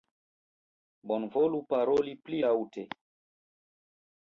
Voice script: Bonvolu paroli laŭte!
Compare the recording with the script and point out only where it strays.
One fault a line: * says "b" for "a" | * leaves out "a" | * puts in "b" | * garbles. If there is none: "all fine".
* puts in "pli"